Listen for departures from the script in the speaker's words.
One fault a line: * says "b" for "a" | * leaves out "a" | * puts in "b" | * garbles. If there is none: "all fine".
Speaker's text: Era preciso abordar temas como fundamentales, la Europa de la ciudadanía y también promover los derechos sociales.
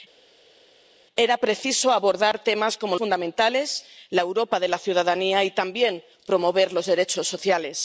all fine